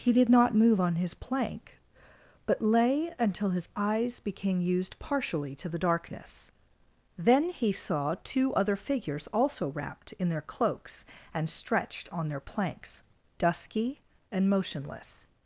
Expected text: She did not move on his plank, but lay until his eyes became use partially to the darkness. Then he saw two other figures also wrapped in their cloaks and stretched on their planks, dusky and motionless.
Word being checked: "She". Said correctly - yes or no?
no